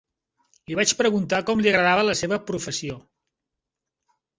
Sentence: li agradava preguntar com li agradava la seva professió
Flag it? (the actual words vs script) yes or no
yes